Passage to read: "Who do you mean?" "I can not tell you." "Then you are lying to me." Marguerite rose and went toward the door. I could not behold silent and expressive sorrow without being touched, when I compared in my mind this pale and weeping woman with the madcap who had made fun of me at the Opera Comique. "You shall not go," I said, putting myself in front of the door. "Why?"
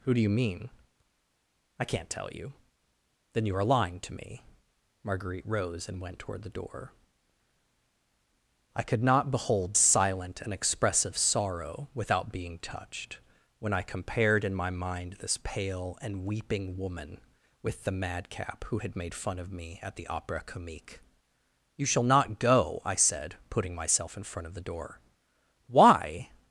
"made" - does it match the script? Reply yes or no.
yes